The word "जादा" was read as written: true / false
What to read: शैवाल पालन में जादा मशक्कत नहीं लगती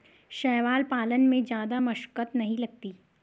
true